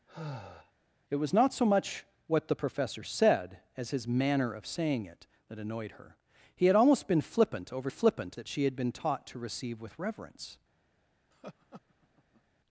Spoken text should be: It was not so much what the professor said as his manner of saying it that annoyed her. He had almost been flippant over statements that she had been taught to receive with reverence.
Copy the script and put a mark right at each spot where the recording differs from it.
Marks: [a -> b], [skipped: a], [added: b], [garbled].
It was not so much what the professor said as his manner of saying it that annoyed her. He had almost been flippant over [statements -> flippant] that she had been taught to receive with reverence.